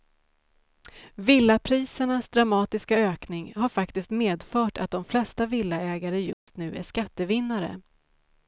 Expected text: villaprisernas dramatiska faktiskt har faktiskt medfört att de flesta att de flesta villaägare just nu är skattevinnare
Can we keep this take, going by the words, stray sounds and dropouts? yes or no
no